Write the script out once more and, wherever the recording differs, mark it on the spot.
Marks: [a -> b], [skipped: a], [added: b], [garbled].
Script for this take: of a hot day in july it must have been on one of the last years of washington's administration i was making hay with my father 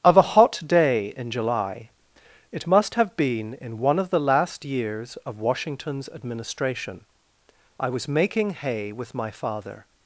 of a hot day in july it must have been [on -> in] one of the last years of washington's administration i was making hay with my father